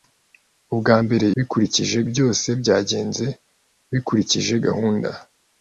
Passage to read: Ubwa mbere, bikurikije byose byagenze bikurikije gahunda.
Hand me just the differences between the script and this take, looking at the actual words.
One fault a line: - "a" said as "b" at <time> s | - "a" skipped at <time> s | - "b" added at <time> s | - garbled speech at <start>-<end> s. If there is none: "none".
none